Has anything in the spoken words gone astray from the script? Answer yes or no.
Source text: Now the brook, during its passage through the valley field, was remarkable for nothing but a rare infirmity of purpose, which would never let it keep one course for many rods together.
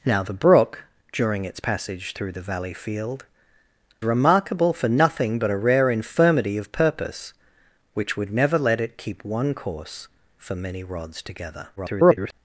yes